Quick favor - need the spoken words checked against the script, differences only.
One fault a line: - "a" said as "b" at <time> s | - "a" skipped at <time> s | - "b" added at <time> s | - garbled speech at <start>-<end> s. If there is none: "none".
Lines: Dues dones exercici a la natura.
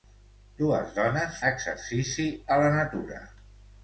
none